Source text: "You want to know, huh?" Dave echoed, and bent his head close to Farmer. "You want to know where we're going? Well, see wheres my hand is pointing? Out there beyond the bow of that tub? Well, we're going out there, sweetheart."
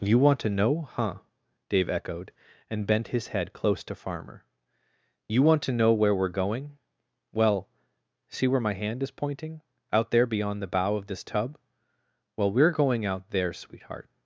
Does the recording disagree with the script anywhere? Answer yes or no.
yes